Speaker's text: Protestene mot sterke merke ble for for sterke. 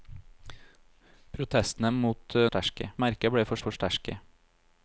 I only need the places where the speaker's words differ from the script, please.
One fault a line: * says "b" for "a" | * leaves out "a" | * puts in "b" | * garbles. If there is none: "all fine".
all fine